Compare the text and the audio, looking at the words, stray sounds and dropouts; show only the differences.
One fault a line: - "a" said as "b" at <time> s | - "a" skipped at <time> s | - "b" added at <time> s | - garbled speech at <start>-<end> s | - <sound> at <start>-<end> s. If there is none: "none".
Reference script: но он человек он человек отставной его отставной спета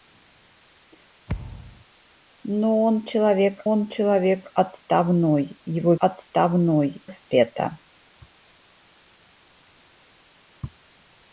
- thud at 1.3-1.9 s